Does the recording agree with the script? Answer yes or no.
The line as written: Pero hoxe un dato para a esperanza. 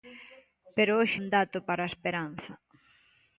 yes